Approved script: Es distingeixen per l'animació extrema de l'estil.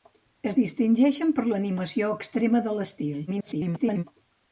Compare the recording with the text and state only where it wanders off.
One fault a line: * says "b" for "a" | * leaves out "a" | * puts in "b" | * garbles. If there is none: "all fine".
* garbles